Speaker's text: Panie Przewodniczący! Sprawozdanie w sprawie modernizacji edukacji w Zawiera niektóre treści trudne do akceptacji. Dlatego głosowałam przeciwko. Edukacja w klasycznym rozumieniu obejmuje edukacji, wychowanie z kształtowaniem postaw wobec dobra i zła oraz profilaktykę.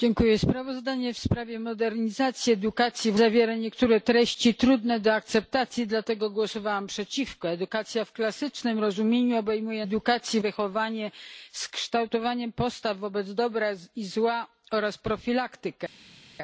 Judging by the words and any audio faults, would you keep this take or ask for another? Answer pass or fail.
pass